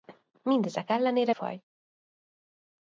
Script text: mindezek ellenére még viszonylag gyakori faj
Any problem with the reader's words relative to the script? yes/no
yes